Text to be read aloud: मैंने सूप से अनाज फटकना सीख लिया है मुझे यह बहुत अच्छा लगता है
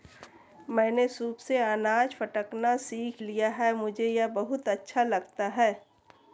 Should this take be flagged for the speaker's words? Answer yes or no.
no